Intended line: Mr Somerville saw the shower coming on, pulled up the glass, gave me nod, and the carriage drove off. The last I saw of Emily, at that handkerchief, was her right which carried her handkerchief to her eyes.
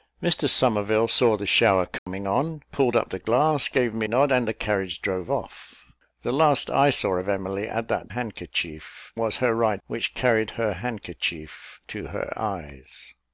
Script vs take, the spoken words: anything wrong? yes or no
no